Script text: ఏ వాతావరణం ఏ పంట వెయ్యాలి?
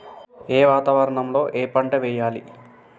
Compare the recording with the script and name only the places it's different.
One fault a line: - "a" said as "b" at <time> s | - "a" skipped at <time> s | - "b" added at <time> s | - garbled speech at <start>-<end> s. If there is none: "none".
- "లో" added at 1.3 s